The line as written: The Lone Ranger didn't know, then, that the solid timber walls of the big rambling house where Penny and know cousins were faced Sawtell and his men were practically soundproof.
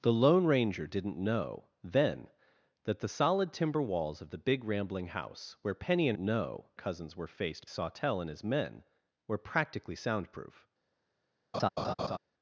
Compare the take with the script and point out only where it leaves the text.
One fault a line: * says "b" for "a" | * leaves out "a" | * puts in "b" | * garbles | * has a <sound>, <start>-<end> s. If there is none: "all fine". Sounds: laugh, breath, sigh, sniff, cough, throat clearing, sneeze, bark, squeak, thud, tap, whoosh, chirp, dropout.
* has a laugh, 11.5-12.2 s